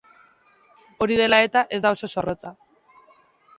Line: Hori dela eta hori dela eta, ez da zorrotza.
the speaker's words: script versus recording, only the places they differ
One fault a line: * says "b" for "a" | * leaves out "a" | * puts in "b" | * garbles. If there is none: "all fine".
* leaves out "hori dela eta"
* puts in "oso"